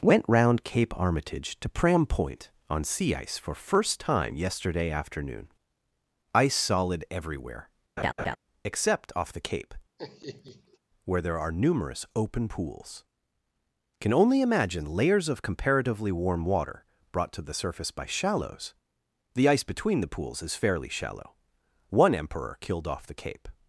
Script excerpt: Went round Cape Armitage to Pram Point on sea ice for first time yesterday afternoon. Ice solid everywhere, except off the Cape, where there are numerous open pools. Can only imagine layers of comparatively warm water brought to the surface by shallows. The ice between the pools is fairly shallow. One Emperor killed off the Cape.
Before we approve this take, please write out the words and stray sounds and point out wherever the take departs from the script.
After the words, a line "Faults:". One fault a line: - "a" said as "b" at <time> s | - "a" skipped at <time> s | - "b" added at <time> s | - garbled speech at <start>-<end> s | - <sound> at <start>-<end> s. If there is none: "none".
Went round Cape Armitage to Pram Point on sea ice for first time yesterday afternoon. Ice solid everywhere, except off the Cape, where there are numerous open pools. Can only imagine layers of comparatively warm water brought to the surface by shallows. The ice between the pools is fairly shallow. One Emperor killed off the Cape.
Faults:
- laugh at 8.0-8.4 s
- laugh at 10.0-10.8 s